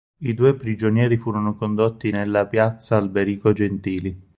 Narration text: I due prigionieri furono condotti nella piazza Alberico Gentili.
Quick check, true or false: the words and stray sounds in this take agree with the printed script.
true